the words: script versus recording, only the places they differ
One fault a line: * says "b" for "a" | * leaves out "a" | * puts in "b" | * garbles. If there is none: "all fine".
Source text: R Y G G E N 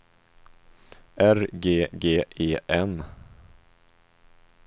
* leaves out "Y"